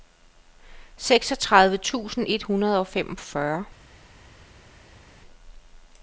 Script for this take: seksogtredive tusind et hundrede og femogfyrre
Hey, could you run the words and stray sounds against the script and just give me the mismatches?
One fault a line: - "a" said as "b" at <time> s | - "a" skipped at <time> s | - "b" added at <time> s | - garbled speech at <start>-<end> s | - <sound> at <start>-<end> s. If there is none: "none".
none